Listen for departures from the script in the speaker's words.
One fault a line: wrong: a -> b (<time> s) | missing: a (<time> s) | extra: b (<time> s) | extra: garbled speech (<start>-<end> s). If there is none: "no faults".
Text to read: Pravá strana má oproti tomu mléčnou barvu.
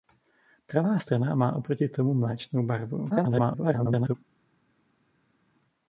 extra: garbled speech (3.1-4.2 s)